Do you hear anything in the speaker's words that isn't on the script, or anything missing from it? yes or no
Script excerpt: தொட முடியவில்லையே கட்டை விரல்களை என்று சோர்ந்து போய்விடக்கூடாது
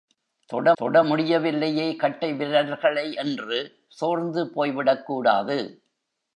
yes